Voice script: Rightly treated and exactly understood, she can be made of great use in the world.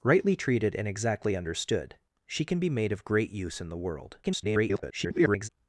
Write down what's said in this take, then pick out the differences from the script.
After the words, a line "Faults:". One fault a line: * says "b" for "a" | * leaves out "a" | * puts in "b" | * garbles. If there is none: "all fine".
Rightly treated and exactly understood, she can be made of great use in the world. [garbled]
Faults:
* garbles